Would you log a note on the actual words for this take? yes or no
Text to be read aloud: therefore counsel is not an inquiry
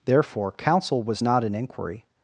yes